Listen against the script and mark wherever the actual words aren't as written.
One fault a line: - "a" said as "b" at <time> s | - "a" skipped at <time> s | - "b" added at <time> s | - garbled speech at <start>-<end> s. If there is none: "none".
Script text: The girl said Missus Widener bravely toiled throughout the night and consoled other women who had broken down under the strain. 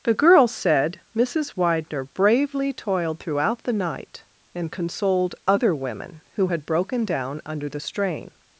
none